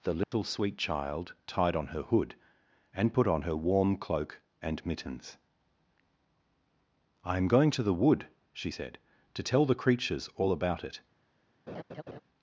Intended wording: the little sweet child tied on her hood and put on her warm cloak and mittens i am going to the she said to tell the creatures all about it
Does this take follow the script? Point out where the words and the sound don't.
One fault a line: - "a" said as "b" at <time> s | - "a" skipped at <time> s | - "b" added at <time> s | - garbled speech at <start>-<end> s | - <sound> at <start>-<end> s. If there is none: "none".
- dropout at 0.2-0.3 s
- "wood" added at 7.9 s
- laugh at 11.7-12.2 s